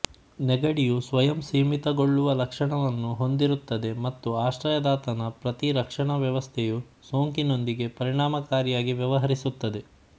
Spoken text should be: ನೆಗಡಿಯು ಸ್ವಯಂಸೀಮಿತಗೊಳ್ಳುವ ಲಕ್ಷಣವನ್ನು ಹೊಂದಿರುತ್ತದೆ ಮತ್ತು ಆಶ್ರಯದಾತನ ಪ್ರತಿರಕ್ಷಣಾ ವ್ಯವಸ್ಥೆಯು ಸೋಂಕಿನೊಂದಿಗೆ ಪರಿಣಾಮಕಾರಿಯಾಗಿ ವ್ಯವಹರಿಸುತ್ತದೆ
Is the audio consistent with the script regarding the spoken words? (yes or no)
yes